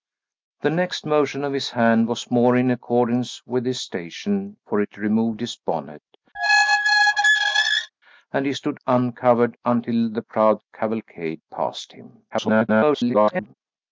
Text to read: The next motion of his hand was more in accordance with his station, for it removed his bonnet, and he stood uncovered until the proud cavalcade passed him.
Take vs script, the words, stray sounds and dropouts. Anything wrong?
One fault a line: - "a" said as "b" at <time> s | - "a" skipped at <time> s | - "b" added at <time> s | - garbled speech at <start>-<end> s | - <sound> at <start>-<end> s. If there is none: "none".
- squeak at 6.3-7.9 s
- garbled speech at 12.3-13.5 s